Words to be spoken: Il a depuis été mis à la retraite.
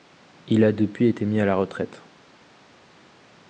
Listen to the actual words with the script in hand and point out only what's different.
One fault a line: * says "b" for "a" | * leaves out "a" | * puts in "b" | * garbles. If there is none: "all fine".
all fine